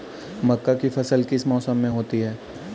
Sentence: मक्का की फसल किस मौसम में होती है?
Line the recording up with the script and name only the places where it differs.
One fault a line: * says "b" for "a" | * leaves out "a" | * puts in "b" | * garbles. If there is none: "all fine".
all fine